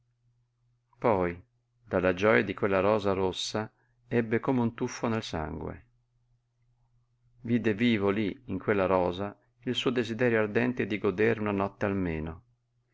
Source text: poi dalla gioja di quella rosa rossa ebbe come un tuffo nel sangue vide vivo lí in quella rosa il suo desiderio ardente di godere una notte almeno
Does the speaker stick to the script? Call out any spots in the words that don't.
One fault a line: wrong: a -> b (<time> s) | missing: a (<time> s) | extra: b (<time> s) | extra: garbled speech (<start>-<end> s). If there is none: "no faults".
no faults